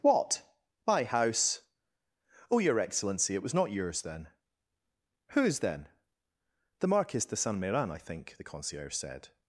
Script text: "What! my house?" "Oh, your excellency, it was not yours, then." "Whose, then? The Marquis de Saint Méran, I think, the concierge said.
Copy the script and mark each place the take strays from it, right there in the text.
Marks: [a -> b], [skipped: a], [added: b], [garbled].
"What! my house?" "Oh, your excellency, it was not yours, then." "Whose, then? The Marquis de Saint Méran, I think, the concierge said.